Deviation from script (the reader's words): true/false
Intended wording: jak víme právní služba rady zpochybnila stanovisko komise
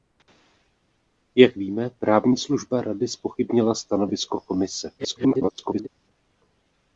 true